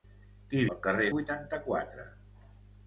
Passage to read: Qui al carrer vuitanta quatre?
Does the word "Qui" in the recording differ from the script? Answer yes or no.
no